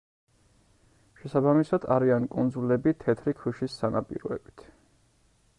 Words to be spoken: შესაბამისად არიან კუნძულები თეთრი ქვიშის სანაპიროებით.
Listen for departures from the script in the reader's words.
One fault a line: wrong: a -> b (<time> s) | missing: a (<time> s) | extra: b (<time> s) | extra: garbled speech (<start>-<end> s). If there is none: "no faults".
no faults